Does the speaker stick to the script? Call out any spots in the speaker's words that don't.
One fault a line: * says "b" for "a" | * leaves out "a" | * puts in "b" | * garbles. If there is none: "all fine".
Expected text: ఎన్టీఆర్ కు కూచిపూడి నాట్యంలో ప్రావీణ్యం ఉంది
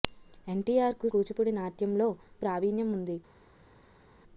all fine